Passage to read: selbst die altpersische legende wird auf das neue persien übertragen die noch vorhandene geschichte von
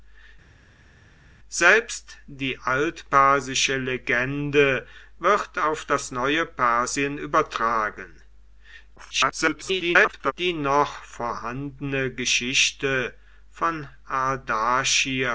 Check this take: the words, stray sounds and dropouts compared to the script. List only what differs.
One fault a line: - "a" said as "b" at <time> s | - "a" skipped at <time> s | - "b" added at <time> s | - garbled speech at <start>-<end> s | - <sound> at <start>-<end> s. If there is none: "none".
- garbled speech at 9.0-10.3 s